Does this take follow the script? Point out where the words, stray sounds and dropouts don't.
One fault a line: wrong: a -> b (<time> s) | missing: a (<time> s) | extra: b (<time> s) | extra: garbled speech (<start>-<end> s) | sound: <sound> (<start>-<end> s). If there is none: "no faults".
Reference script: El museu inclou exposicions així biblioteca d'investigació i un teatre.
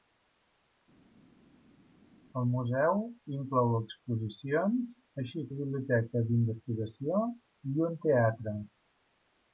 no faults